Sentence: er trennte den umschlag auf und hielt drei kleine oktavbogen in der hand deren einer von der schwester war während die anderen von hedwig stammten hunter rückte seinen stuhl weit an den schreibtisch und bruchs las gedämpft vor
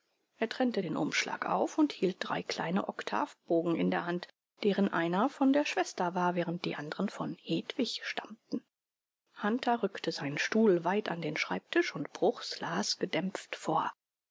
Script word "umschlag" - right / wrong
right